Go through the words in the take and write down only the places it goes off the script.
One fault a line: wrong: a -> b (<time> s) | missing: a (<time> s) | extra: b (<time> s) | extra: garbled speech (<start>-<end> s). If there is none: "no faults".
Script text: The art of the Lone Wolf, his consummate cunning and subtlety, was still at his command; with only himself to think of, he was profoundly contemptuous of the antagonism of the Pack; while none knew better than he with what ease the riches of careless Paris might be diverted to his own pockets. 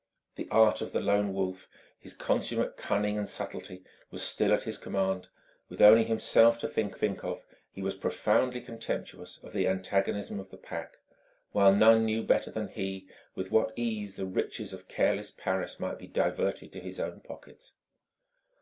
extra: think (6.9 s)